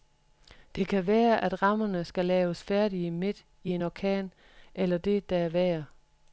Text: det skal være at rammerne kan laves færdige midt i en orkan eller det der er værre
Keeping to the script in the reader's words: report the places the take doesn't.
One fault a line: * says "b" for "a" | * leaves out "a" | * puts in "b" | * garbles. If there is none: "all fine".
* says "kan" for "skal"
* says "skal" for "kan"